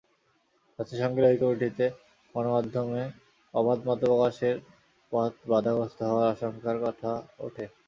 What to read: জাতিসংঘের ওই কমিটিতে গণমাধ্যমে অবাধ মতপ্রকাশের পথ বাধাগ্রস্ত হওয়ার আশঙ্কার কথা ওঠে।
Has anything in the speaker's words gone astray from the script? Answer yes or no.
no